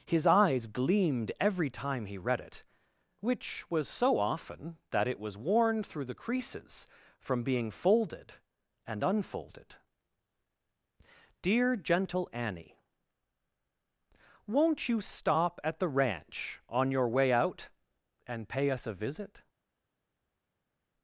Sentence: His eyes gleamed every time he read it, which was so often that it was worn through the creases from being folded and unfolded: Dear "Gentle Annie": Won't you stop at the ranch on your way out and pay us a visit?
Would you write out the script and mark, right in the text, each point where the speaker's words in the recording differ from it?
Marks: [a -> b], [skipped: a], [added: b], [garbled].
His eyes gleamed every time he read it, which was so often that it was worn through the creases from being folded and unfolded: Dear "Gentle Annie": Won't you stop at the ranch on your way out and pay us a visit?